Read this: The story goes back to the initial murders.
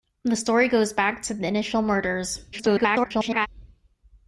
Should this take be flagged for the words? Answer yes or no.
yes